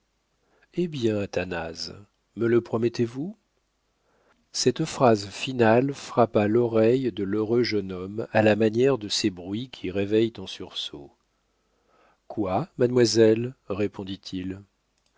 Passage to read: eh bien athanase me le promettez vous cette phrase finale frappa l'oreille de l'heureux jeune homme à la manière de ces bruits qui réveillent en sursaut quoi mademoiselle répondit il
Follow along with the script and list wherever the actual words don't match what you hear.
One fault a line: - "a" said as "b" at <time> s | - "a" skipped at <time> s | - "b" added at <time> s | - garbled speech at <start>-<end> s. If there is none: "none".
none